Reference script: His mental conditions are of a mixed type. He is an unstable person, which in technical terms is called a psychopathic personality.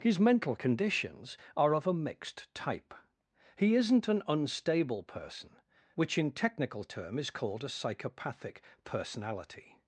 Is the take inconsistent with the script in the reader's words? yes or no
yes